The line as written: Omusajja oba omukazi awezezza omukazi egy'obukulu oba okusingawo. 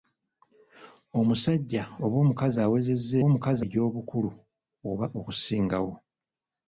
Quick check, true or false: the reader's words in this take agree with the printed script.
true